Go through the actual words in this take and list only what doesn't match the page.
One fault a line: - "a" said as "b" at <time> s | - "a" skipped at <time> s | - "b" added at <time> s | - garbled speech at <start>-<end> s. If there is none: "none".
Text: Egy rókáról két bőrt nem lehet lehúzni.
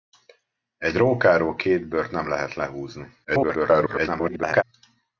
- garbled speech at 3.2-4.6 s